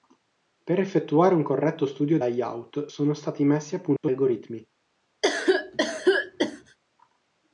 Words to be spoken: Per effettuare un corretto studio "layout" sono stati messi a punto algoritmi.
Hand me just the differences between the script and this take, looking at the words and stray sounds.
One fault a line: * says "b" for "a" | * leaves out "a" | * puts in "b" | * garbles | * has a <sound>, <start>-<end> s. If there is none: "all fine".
* has a dropout, 4.0-4.0 s
* has a cough, 5.2-6.8 s